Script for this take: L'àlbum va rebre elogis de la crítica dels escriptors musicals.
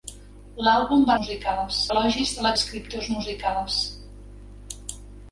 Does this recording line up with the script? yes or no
no